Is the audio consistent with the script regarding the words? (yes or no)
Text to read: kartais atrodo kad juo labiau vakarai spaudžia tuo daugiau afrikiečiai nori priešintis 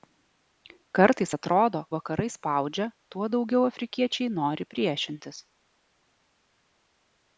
no